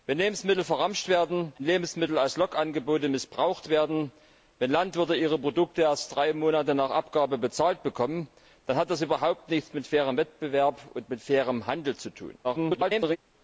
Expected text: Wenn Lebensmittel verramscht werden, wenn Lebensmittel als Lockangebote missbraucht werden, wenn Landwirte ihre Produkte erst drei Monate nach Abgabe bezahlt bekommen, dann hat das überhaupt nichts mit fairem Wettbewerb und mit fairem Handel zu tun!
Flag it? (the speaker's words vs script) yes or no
yes